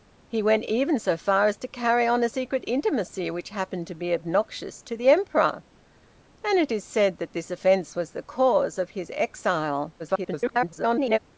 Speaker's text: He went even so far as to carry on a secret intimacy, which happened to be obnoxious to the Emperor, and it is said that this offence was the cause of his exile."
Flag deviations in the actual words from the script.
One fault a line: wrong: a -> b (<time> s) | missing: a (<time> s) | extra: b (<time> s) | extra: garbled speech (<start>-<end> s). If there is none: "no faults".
extra: garbled speech (10.0-11.2 s)